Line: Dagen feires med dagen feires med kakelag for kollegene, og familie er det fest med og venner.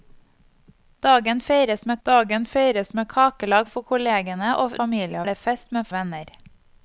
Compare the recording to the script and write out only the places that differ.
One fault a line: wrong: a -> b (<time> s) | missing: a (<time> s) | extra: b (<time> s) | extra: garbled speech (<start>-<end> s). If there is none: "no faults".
no faults